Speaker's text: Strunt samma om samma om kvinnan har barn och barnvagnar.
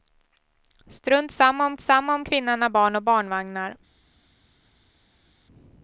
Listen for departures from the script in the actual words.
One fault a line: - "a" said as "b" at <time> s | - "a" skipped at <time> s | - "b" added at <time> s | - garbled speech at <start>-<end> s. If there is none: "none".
none